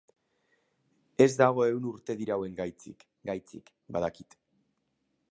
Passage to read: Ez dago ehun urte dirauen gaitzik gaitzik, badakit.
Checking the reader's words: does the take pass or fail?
pass